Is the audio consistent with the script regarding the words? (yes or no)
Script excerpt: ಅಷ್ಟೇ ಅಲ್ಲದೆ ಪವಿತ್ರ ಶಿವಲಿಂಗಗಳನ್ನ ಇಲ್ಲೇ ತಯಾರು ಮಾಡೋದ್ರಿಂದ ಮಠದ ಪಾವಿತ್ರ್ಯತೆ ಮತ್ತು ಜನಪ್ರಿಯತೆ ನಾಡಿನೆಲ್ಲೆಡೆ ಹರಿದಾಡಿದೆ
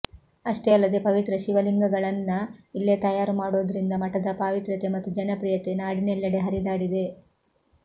yes